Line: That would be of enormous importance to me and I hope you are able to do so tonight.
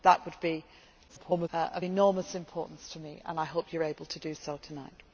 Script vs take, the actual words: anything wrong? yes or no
yes